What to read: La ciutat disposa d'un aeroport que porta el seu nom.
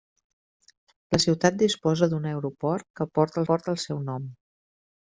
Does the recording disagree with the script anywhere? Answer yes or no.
yes